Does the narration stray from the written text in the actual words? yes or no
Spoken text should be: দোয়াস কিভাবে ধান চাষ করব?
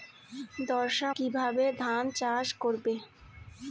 no